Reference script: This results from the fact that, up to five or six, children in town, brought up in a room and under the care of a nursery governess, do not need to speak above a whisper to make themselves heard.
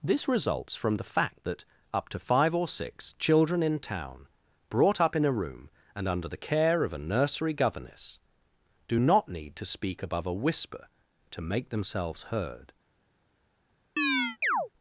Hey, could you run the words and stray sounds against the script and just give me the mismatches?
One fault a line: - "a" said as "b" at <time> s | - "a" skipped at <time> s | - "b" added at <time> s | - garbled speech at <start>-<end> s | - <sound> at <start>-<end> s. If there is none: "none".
- chirp at 14.0-14.7 s